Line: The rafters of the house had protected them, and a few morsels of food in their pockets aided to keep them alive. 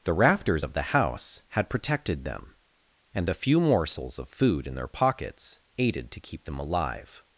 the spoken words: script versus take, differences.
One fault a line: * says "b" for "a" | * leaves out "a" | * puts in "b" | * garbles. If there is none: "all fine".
* says "the" for "a"